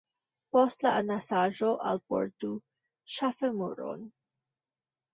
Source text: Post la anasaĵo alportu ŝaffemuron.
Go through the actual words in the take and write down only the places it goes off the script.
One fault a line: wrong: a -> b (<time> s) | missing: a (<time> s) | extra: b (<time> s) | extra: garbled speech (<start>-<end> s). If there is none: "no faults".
no faults